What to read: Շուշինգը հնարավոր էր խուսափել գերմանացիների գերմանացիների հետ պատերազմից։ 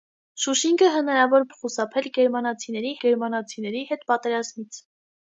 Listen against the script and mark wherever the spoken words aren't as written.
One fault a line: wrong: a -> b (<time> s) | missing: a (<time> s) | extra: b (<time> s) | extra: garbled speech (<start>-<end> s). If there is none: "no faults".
no faults